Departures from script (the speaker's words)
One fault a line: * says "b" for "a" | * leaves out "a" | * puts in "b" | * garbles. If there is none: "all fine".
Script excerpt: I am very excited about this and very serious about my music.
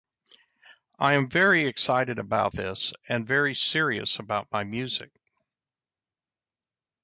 all fine